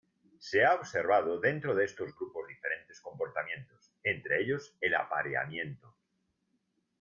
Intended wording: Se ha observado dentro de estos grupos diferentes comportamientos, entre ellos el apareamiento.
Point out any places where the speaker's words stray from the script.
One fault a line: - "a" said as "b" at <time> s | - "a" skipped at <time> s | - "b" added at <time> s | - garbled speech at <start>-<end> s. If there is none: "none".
none